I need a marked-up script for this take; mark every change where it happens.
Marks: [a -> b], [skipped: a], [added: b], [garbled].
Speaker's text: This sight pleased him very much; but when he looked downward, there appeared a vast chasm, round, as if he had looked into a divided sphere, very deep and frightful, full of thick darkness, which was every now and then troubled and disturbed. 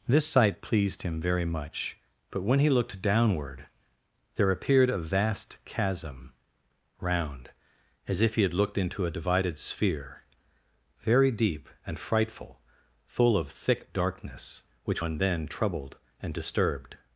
This sight pleased him very much; but when he looked downward, there appeared a vast chasm, round, as if he had looked into a divided sphere, very deep and frightful, full of thick darkness, which [skipped: was every now] and then troubled and disturbed.